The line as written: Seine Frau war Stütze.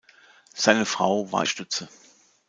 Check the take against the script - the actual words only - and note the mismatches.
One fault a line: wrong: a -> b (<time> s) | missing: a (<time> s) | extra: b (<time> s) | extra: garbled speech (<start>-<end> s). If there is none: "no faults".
no faults